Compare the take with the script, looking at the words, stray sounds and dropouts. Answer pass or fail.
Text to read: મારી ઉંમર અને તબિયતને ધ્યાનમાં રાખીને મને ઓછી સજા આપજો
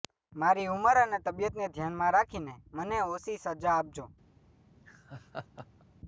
fail